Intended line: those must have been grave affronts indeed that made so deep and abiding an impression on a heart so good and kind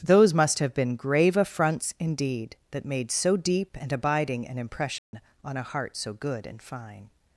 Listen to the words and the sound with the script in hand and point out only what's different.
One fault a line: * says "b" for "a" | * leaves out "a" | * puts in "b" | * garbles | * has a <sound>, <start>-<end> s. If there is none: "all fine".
* has a dropout, 5.0-5.1 s
* says "fine" for "kind"